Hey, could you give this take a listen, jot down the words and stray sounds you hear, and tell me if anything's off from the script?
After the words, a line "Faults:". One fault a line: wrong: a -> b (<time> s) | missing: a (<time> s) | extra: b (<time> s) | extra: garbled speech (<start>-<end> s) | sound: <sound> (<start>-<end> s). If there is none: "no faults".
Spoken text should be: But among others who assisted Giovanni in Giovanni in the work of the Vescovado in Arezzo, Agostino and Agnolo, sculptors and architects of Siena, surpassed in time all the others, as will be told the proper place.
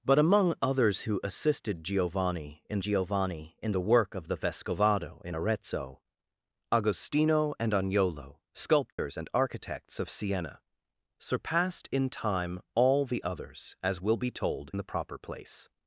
But among others who assisted Giovanni in Giovanni in the work of the Vescovado in Arezzo, Agostino and Agnolo, sculptors and architects of Siena, surpassed in time all the others, as will be told the proper place.
Faults:
sound: dropout (8.9-9.0 s)